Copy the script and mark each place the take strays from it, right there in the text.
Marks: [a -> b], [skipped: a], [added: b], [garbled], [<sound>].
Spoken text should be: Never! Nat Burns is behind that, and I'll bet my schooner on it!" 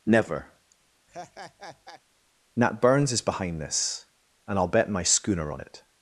Never! [laugh] Nat Burns is behind [that, -> this] and I'll bet my schooner on it!"